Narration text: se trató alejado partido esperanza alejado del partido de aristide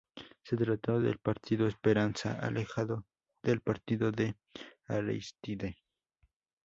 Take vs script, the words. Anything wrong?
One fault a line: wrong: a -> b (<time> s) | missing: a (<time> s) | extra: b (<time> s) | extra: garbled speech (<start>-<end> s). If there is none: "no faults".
wrong: alejado -> del (1.0 s)